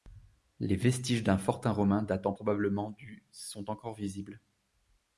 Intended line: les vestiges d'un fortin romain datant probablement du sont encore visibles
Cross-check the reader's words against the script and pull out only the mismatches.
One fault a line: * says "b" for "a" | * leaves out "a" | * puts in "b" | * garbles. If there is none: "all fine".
all fine